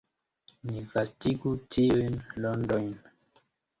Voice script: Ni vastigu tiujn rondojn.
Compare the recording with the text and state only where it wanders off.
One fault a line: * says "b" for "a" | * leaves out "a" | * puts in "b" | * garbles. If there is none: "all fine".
all fine